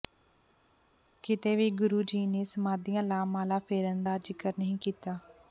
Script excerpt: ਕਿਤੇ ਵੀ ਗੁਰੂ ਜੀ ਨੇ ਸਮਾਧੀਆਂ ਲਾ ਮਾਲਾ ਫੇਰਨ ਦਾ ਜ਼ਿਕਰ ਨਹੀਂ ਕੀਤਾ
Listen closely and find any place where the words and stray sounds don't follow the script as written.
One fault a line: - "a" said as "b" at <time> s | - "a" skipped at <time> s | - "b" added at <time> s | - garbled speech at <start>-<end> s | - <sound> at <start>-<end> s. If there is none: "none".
none